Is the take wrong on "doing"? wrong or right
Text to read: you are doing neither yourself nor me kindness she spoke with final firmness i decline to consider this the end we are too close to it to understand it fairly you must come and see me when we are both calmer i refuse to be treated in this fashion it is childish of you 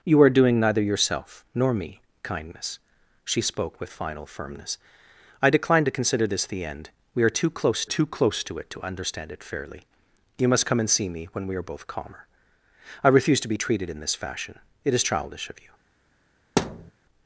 right